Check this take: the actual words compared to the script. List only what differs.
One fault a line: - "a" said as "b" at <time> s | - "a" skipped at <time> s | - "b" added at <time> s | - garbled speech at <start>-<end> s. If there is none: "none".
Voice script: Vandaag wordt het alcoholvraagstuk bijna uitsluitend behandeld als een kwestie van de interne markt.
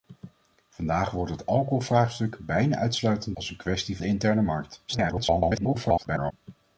- "behandeld" skipped at 3.4 s
- "van" skipped at 4.0 s
- garbled speech at 4.9-6.3 s